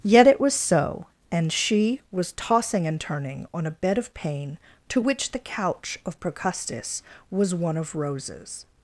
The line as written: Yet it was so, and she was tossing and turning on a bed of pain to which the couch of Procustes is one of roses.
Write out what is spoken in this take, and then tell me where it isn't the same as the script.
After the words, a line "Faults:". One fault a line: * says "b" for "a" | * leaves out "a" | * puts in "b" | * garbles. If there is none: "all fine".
Yet it was so, and she was tossing and turning on a bed of pain to which the couch of Procustes was one of roses.
Faults:
* says "was" for "is"